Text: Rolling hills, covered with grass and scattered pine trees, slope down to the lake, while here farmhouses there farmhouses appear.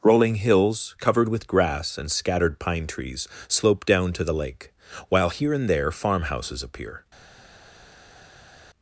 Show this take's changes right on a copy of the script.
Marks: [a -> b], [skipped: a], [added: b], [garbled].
Rolling hills, covered with grass and scattered pine trees, slope down to the lake, while here [farmhouses -> and] there farmhouses appear.